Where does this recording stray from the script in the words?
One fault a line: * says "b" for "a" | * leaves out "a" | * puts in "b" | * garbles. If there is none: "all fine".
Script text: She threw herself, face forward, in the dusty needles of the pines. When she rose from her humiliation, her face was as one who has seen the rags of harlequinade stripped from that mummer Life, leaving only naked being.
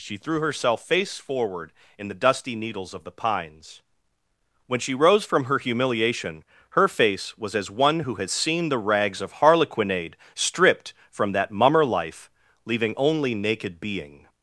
all fine